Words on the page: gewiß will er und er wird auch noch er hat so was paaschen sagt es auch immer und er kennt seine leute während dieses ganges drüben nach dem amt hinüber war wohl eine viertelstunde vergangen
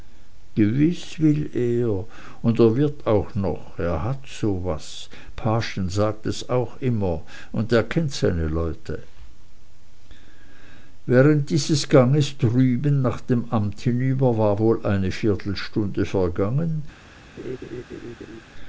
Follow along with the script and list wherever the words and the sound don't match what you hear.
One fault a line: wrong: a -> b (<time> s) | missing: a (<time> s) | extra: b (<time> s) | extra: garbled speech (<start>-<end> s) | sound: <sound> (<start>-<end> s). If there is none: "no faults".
sound: laugh (17.4-18.4 s)